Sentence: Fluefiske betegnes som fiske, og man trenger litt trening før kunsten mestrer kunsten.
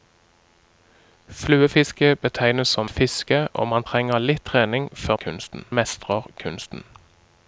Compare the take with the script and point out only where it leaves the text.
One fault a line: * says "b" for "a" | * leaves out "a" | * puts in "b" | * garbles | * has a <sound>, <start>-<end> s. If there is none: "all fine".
all fine